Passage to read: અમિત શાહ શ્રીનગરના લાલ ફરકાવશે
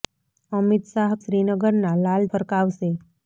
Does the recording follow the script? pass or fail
pass